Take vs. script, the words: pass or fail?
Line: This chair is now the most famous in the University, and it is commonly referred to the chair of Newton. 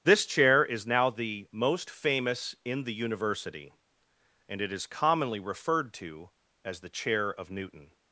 fail